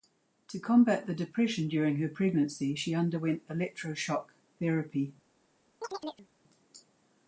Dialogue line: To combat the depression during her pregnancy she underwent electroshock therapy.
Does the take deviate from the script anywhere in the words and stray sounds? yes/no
yes